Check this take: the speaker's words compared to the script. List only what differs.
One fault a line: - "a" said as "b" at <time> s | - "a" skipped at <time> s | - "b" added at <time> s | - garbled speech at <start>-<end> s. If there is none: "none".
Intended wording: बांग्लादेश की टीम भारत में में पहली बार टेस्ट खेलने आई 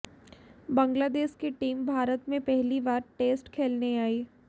- "में" skipped at 2.4 s